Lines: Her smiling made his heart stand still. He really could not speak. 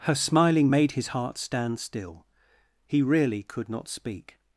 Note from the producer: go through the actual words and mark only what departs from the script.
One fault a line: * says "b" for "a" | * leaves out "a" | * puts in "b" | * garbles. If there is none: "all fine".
all fine